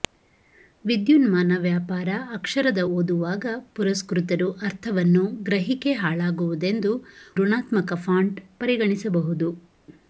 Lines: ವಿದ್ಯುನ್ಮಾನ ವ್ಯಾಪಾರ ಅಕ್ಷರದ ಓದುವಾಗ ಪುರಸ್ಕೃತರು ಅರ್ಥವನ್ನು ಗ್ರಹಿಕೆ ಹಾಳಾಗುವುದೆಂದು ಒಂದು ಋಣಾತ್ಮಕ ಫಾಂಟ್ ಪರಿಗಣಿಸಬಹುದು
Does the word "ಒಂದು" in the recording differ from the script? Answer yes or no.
yes